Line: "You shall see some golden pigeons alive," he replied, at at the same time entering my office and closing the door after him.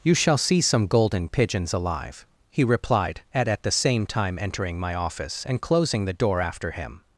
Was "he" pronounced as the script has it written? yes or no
yes